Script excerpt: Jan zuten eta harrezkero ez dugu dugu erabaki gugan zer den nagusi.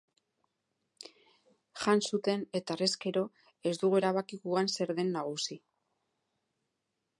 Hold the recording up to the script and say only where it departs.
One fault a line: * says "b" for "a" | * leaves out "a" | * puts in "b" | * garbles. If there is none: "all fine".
* leaves out "dugu"